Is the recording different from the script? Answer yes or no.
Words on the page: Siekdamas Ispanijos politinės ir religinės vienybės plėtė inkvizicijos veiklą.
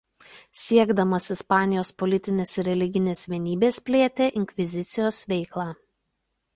no